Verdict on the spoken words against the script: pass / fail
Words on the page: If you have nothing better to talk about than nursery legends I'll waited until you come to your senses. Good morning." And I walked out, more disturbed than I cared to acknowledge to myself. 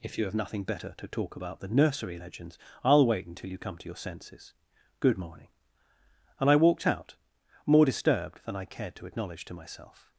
fail